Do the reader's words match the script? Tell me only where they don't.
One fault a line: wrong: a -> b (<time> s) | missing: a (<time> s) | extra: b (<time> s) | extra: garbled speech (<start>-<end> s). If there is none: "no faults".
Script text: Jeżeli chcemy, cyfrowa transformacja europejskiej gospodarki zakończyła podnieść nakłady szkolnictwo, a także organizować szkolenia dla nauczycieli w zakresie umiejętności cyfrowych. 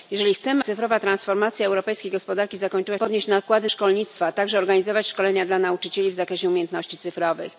no faults